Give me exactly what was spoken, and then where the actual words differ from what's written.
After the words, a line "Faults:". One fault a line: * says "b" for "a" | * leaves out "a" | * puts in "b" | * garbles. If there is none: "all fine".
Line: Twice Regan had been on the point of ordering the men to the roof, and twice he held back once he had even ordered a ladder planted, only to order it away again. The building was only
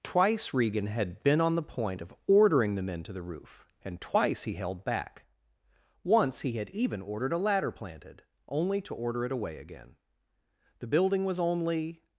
Twice Regan had been on the point of ordering the men to the roof, and twice he held back once he had even ordered a ladder planted, only to order it away again. The building was only
Faults:
all fine